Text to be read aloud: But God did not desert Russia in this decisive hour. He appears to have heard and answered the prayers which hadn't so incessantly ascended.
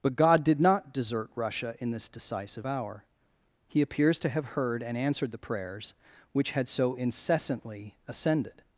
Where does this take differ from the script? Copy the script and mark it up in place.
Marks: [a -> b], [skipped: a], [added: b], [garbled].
But God did not desert Russia in this decisive hour. He appears to have heard and answered the prayers which [hadn't -> had] so incessantly ascended.